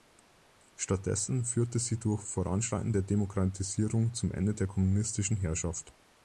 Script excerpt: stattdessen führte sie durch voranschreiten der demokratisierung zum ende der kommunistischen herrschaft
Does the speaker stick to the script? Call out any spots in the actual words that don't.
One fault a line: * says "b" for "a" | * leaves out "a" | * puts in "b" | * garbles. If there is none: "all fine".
all fine